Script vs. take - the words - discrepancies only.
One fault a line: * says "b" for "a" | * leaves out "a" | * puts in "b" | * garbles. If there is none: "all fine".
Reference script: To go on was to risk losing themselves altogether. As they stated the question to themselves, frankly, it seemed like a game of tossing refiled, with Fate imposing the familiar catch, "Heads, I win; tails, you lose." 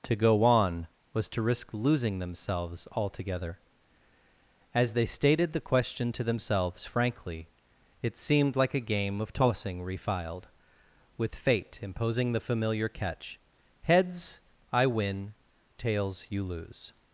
all fine